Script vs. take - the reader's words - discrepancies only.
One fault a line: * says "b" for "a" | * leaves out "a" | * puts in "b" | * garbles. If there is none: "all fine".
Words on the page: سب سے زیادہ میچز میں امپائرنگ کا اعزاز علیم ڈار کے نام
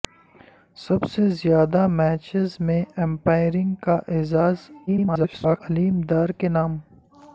* garbles